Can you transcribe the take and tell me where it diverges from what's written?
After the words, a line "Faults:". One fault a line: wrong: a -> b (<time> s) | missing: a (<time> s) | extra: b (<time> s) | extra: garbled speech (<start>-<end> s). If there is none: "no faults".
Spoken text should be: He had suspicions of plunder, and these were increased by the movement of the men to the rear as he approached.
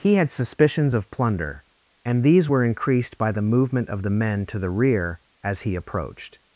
He had suspicions of plunder, and these were increased by the movement of the men to the rear as he approached.
Faults:
no faults